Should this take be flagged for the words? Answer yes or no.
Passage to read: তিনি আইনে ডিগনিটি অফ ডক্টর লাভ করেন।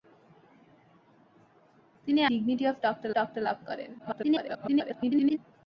yes